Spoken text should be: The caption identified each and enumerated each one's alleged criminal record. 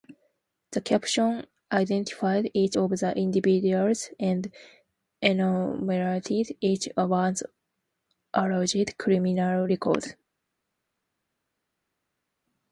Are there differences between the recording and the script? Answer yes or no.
yes